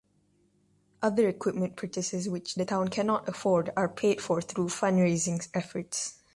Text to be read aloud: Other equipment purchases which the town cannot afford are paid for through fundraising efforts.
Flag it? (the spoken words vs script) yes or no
no